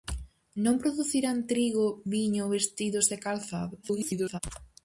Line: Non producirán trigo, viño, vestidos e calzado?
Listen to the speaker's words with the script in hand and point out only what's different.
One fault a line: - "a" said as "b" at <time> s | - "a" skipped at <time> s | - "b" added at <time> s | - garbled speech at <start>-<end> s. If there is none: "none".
- garbled speech at 3.8-4.4 s